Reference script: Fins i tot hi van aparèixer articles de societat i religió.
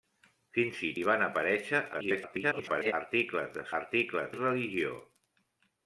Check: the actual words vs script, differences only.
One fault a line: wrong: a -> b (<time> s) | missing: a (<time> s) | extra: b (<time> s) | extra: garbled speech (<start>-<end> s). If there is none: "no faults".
missing: tot (0.9 s)
extra: garbled speech (1.9-2.9 s)
wrong: societat -> articles (3.8 s)